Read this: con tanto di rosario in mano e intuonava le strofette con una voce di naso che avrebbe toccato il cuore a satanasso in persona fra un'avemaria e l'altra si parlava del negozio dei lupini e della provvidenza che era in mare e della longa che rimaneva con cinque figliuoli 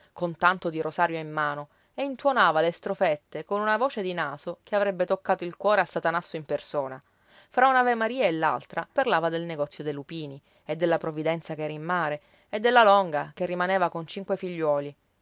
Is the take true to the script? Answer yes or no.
no